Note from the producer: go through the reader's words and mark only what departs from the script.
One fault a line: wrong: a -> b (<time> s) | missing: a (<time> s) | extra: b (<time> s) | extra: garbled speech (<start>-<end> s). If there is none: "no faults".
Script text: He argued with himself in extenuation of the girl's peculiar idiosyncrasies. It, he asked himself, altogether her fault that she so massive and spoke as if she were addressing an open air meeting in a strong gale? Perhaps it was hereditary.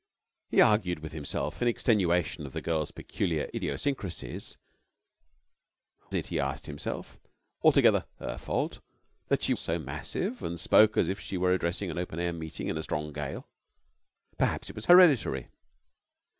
no faults